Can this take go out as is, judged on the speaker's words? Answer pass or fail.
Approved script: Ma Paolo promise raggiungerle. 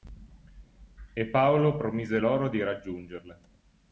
fail